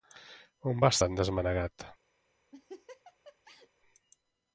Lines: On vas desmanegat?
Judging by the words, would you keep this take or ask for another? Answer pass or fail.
fail